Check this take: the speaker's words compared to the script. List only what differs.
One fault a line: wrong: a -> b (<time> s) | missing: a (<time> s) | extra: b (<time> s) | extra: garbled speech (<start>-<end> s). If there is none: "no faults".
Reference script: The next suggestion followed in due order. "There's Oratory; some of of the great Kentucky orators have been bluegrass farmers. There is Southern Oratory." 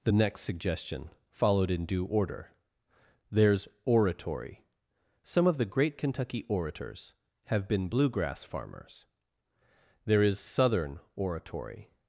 missing: of (5.6 s)